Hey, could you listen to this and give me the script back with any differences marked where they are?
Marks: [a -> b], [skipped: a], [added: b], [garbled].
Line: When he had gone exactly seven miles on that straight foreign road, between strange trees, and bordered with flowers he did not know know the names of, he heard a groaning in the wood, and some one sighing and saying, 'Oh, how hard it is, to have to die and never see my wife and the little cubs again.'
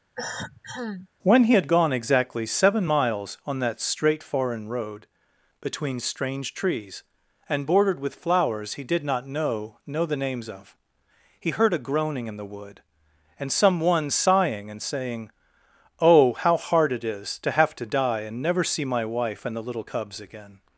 When he had gone exactly seven miles on that straight foreign road, between strange trees, and bordered with flowers he did not know know the names of, he heard a groaning in the wood, and some one sighing and saying, 'Oh, how hard it is, to have to die and never see my wife and the little cubs again.'